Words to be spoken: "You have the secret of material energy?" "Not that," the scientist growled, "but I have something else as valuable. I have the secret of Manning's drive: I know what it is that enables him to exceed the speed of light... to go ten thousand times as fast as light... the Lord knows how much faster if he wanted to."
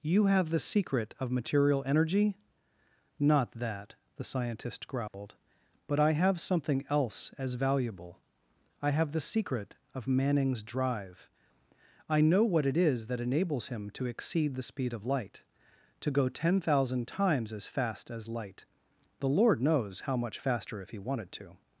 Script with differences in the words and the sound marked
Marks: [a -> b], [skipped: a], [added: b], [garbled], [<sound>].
"You have the secret of material energy?" "Not that," the scientist growled, [dropout] "but I have something else as valuable. I have the secret of Manning's drive: I know what it is that enables him to exceed the speed of light... to go ten thousand times as fast as light... the Lord knows how much faster if he wanted to."